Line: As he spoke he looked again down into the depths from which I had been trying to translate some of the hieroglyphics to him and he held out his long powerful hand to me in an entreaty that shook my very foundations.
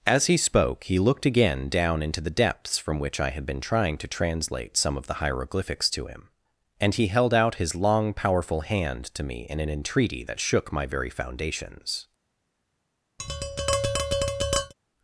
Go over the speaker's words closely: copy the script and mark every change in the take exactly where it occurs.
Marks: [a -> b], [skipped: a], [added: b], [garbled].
As he spoke he looked again down into the depths from which I had been trying to translate some of the hieroglyphics to him and he held out his long powerful hand to me in an entreaty that shook my very foundations.